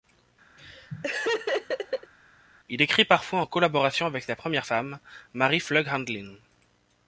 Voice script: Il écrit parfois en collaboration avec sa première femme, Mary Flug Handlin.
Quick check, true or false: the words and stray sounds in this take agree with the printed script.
false